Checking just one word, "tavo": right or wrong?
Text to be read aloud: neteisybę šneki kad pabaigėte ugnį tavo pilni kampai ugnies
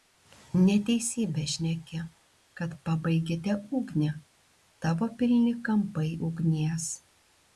right